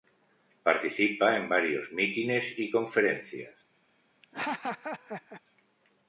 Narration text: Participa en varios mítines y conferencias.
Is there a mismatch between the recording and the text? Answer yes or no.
no